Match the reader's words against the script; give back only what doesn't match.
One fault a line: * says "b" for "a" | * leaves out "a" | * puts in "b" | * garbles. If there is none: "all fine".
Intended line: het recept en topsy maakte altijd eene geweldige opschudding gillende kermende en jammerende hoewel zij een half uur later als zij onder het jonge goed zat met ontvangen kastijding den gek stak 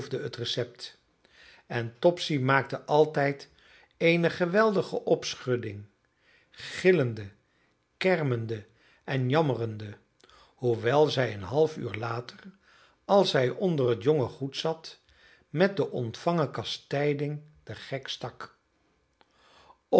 * puts in "de"